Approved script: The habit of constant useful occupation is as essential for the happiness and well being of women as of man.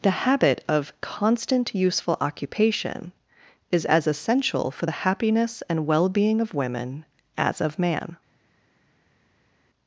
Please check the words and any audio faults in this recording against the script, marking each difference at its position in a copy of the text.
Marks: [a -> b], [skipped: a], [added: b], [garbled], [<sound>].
The habit of constant useful occupation is as essential for the happiness and well being of women as of man.